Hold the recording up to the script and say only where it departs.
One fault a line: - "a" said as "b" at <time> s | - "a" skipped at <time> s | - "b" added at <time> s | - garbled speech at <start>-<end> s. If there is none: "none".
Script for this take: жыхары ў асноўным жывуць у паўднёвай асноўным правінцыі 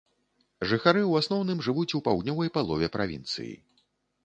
- "асноўным" said as "палове" at 2.6 s